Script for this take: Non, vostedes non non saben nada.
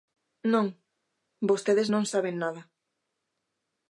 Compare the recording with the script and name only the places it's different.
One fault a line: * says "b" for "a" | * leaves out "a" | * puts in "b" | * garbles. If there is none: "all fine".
* leaves out "non"